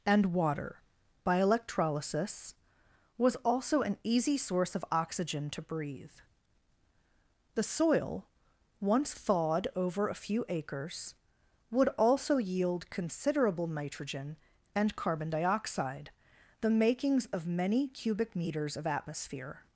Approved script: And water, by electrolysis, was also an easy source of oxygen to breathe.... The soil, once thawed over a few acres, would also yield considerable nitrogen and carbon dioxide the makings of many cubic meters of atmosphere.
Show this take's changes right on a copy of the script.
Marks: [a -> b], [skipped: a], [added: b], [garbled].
And water, by electrolysis, was also an easy source of oxygen to breathe.... The soil, once thawed over a few acres, would also yield considerable nitrogen and carbon dioxide the makings of many cubic meters of atmosphere.